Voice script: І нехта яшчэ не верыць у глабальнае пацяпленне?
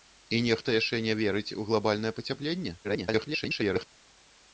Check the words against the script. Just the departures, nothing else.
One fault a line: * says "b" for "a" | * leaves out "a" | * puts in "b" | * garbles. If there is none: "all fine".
* garbles